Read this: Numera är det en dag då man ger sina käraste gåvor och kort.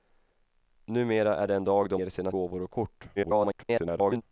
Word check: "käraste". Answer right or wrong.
wrong